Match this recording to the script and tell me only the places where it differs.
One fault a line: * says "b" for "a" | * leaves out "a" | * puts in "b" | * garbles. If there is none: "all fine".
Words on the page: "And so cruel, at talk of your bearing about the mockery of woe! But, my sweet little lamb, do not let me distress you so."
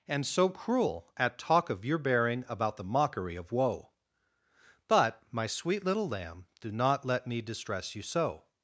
all fine